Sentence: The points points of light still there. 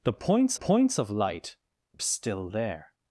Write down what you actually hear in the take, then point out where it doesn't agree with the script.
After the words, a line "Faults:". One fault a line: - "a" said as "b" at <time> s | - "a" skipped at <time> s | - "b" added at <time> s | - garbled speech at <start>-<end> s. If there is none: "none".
The points points of light still there.
Faults:
none